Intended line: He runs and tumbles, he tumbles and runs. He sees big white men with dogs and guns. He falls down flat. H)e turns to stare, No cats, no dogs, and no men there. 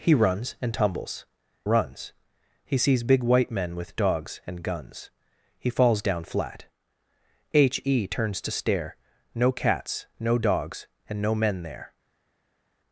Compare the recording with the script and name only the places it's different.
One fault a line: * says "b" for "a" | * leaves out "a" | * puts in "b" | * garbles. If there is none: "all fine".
* leaves out "he tumbles and"